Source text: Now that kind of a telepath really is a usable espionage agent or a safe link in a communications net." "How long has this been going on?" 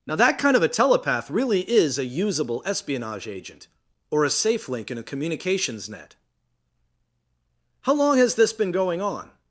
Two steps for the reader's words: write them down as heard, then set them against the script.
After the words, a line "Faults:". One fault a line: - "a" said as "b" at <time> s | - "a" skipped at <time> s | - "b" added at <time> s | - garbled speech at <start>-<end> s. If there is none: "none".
Now that kind of a telepath really is a usable espionage agent or a safe link in a communications net." "How long has this been going on?"
Faults:
none